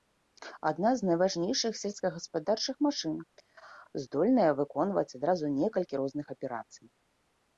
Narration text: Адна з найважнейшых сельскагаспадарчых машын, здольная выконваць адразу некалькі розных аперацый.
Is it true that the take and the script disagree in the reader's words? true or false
false